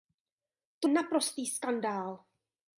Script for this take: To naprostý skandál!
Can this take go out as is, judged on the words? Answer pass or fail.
pass